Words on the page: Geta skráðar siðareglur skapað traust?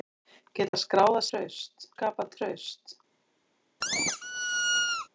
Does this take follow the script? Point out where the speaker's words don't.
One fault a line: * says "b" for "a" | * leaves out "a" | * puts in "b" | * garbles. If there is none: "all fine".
* says "traust" for "siðareglur"